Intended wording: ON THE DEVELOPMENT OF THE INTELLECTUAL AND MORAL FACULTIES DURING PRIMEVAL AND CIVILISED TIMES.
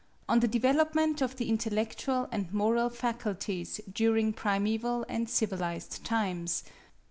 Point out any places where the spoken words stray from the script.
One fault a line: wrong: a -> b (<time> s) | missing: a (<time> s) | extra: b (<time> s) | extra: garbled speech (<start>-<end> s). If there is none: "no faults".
no faults